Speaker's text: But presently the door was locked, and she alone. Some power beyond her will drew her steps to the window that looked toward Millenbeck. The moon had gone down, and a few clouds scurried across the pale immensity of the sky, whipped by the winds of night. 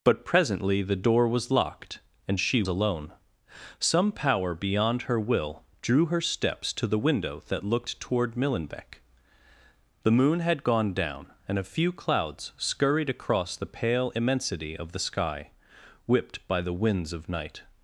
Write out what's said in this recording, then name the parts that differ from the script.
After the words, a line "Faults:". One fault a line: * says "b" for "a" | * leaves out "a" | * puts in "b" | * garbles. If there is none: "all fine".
But presently the door was locked, and she alone. Some power beyond her will drew her steps to the window that looked toward Millenbeck. The moon had gone down, and a few clouds scurried across the pale immensity of the sky, whipped by the winds of night.
Faults:
all fine